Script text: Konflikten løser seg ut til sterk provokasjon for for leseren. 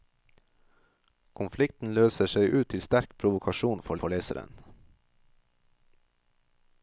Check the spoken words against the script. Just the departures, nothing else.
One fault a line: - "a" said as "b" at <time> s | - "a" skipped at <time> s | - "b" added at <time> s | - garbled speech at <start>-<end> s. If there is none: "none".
none